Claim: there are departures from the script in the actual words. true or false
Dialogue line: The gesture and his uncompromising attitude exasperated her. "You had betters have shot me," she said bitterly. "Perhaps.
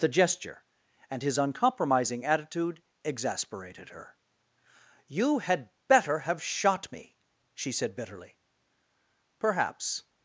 true